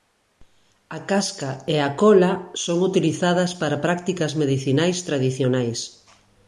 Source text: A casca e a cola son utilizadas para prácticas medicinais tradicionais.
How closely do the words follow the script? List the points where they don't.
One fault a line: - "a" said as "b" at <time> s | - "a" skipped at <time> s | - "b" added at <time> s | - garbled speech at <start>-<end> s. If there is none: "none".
none